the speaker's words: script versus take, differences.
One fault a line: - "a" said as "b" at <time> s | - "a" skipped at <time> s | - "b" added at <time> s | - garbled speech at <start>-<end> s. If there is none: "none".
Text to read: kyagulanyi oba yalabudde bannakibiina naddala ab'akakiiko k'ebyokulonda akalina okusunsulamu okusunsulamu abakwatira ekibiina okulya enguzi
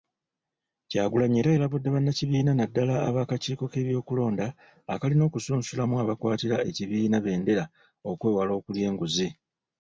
- "oba" said as "era" at 1.4 s
- "okusunsulamu" skipped at 5.9 s
- "bbendera okwewala" added at 7.2 s